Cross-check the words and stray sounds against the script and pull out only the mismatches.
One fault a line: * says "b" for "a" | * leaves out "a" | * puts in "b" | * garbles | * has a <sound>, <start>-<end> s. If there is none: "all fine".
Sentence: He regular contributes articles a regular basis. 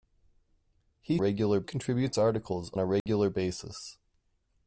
* has a dropout, 3.0-3.1 s